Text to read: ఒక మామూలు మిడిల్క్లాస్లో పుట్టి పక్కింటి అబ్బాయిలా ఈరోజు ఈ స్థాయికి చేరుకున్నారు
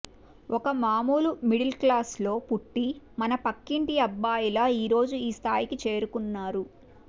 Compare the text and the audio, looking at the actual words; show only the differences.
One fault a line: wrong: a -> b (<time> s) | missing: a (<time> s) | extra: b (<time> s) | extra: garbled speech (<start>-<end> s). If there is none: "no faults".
extra: మన (3.2 s)